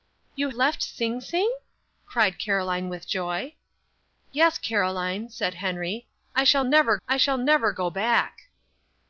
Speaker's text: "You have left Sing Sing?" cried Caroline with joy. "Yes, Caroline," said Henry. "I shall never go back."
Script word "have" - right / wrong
wrong